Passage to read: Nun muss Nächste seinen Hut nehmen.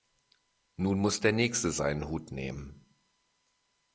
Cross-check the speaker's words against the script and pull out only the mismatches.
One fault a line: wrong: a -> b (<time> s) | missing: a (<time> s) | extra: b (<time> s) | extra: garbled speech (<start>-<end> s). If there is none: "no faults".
extra: der (1.2 s)